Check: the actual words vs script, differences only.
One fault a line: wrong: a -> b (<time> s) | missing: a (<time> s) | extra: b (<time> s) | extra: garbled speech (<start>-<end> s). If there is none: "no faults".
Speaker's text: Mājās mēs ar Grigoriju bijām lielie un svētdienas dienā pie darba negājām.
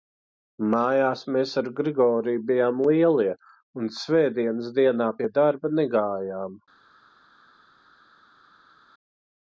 no faults